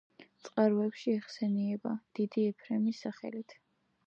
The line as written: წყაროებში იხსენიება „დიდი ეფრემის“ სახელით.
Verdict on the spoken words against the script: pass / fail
pass